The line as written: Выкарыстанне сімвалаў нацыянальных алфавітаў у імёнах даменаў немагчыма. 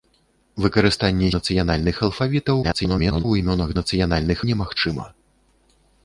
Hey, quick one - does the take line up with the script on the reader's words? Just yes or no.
no